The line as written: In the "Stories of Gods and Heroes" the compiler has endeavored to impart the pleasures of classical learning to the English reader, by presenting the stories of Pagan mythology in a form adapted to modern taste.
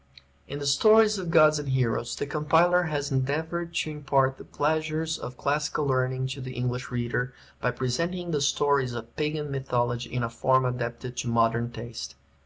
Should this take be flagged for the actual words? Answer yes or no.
no